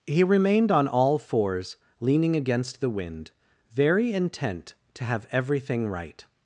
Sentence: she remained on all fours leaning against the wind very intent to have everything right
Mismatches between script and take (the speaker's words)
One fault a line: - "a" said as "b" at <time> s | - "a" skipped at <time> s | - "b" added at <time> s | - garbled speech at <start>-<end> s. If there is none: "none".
- "she" said as "he" at 0.1 s